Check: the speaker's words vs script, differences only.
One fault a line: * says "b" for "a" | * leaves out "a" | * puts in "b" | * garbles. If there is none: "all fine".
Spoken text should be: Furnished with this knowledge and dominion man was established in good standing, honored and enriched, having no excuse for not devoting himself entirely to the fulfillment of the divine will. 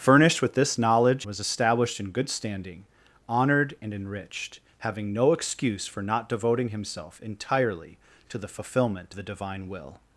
* leaves out "and dominion man"
* leaves out "of"